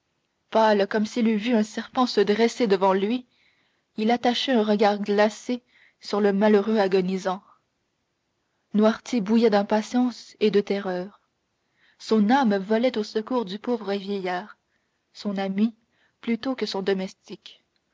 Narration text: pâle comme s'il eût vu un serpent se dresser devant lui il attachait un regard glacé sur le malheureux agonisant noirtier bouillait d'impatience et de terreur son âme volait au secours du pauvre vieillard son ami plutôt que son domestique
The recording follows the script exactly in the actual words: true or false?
true